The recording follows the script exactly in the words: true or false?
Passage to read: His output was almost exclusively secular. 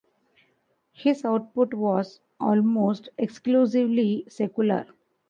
true